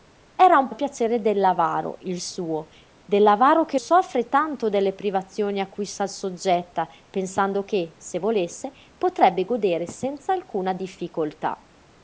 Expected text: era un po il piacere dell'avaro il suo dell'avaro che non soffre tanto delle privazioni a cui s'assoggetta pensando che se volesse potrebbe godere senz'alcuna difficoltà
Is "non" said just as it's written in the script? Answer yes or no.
no